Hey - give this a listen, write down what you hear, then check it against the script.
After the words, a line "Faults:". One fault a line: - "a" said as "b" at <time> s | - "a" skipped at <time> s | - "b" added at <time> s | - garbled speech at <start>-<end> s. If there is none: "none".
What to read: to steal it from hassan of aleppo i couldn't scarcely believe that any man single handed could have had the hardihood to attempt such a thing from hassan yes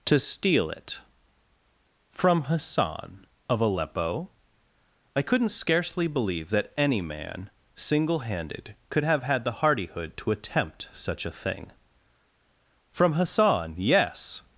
to steal it from hassan of aleppo i couldn't scarcely believe that any man single handed could have had the hardihood to attempt such a thing from hassan yes
Faults:
none